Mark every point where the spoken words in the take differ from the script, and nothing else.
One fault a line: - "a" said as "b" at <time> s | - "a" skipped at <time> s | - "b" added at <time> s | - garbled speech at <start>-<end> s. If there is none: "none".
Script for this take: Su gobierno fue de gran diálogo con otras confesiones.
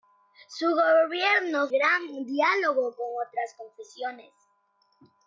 - "fue de" skipped at 1.7 s